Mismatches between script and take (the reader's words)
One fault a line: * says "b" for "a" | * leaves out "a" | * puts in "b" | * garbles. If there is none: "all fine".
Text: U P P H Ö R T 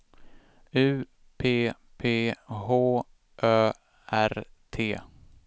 all fine